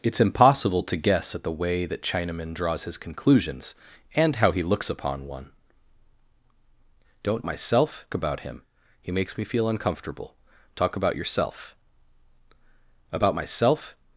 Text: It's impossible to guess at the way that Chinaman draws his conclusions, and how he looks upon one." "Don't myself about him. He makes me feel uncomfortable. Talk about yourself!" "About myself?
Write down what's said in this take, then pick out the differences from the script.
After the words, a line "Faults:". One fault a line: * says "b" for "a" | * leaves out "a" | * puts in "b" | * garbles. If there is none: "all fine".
It's impossible to guess at the way that Chinaman draws his conclusions, and how he looks upon one." "Don't myself about him. He makes me feel uncomfortable. Talk about yourself!" "About myself?
Faults:
all fine